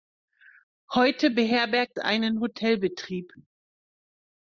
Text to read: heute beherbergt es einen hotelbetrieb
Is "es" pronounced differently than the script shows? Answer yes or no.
yes